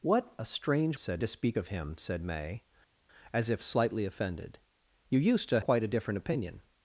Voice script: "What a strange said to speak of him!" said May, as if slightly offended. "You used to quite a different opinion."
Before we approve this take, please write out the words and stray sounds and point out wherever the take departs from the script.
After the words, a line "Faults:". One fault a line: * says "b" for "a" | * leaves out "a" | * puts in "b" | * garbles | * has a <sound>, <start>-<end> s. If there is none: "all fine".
"What a strange said to speak of him!" said May, as if slightly offended. "You used to quite a different opinion."
Faults:
all fine